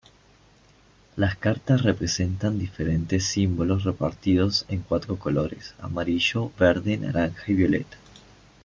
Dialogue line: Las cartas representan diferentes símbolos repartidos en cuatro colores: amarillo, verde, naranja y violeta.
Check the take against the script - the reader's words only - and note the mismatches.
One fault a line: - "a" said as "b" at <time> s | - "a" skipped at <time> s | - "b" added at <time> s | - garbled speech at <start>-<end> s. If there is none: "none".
none